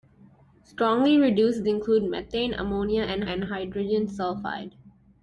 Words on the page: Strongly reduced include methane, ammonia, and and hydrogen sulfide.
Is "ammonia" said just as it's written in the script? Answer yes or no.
yes